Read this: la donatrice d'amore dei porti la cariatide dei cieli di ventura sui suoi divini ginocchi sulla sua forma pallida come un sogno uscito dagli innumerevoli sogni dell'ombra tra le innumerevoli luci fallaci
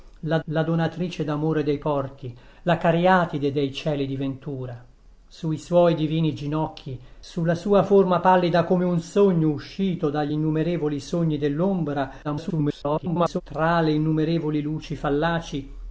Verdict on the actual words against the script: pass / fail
fail